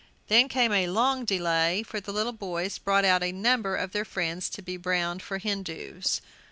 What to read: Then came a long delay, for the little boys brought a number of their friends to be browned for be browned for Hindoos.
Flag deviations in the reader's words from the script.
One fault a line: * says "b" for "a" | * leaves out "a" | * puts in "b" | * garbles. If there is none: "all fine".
* puts in "out"
* leaves out "be browned for"